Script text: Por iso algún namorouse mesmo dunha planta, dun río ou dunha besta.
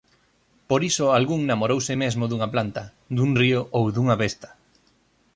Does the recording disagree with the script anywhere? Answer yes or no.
no